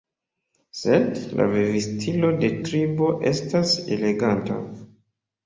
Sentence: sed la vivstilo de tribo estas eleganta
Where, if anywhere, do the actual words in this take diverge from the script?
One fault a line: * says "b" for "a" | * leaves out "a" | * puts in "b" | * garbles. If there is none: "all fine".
all fine